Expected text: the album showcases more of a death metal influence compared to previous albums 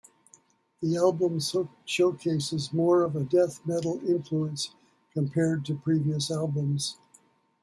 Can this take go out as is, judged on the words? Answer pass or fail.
pass